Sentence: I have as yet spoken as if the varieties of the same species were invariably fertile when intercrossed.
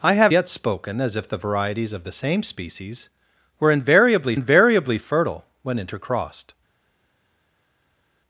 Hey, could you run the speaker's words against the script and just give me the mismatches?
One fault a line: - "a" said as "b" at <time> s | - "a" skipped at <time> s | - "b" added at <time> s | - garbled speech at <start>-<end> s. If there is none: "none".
- "as" skipped at 0.3 s
- "invariably" added at 4.3 s